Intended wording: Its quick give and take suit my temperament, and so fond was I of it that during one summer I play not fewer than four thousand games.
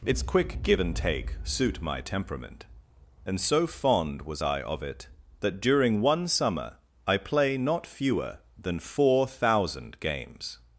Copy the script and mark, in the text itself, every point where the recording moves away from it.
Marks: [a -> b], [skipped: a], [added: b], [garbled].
Its quick give and take suit my temperament, and so fond was I of it that during one summer I play not fewer than four thousand games.